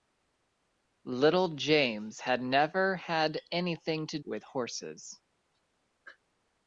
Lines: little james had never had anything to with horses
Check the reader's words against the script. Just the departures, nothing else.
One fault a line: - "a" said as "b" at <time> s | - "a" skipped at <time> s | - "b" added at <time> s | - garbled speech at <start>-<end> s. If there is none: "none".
none